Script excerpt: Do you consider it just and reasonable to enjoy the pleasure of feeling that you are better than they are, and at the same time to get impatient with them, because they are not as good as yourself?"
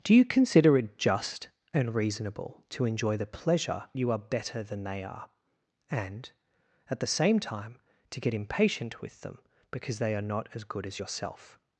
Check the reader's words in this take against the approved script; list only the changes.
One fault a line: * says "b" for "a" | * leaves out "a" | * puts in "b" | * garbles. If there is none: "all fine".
* leaves out "of feeling that"